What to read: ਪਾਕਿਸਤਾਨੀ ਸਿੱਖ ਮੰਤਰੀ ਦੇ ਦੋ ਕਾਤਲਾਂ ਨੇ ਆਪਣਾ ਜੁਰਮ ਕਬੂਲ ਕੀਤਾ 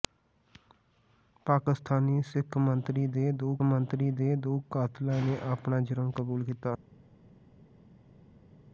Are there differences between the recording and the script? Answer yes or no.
yes